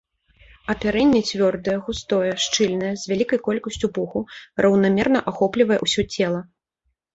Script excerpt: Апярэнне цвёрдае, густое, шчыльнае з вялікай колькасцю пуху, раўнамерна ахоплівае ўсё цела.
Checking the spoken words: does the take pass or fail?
pass